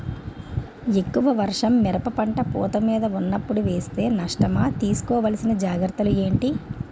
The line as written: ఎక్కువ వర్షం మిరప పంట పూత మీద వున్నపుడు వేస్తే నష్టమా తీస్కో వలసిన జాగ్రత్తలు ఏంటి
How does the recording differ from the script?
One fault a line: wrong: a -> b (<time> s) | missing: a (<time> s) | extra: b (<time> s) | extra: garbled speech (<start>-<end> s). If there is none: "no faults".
no faults